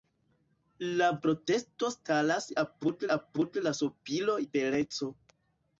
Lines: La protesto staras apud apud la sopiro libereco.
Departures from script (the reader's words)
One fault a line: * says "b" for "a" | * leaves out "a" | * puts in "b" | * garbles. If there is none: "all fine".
all fine